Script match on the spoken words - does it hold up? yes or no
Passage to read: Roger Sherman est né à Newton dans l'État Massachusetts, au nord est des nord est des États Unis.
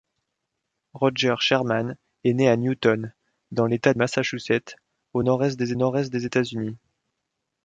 yes